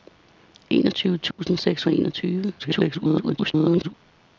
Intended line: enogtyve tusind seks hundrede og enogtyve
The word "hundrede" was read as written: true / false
false